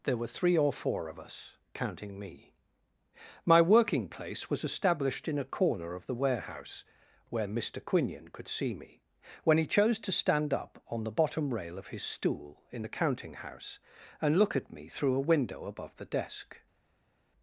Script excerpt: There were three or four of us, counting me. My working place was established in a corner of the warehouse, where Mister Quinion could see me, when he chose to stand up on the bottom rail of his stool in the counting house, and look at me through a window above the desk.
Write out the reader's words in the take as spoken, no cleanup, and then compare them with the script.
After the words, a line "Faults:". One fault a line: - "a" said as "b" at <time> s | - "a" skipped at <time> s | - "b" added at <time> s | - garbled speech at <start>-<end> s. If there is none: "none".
There were three or four of us, counting me. My working place was established in a corner of the warehouse, where Mister Quinion could see me, when he chose to stand up on the bottom rail of his stool in the counting house, and look at me through a window above the desk.
Faults:
none